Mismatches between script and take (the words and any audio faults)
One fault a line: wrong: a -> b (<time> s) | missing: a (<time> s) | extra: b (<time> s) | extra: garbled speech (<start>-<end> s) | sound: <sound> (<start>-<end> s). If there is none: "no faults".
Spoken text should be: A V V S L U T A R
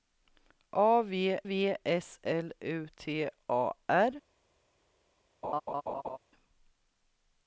sound: laugh (5.4-6.2 s)